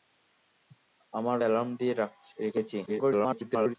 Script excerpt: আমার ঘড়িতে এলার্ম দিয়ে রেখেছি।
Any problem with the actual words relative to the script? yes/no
yes